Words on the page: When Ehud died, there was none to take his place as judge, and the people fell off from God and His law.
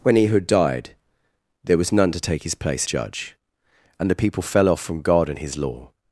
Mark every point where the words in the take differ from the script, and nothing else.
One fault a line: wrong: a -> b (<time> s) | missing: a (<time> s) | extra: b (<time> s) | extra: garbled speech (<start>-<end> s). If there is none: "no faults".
missing: as (2.9 s)